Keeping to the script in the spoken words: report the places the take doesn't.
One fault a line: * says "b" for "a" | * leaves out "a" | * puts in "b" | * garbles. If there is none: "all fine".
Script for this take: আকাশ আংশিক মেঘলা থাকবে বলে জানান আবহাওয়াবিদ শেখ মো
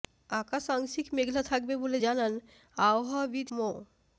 * leaves out "শেখ"